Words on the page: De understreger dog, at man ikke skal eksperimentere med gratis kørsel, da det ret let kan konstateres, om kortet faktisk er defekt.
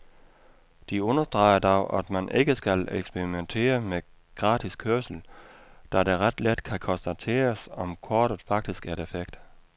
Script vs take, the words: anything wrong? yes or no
no